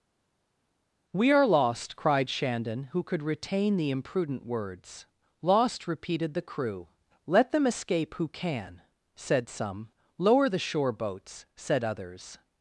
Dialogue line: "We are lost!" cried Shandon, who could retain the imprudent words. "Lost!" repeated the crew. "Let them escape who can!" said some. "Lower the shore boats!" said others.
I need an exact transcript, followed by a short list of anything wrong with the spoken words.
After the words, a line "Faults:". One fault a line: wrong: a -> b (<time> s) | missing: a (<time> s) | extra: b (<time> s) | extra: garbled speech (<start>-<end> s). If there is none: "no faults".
"We are lost!" cried Shandon, who could retain the imprudent words. "Lost!" repeated the crew. "Let them escape who can!" said some. "Lower the shore boats!" said others.
Faults:
no faults